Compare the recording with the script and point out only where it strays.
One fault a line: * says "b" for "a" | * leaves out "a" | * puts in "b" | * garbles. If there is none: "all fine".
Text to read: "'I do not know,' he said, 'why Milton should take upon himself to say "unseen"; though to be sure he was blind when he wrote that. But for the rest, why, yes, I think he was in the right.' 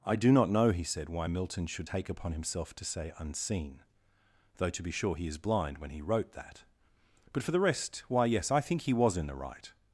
* says "is" for "was"